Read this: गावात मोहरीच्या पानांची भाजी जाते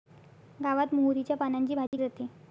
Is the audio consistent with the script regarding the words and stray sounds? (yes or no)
no